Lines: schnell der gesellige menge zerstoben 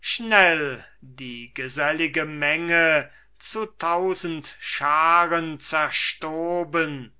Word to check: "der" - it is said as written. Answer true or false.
false